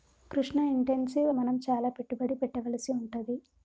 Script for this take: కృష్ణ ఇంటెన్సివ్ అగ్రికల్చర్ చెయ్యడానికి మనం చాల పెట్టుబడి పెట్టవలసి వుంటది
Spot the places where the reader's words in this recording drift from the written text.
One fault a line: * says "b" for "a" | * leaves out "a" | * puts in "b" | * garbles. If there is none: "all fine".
* leaves out "అగ్రికల్చర్ చెయ్యడానికి"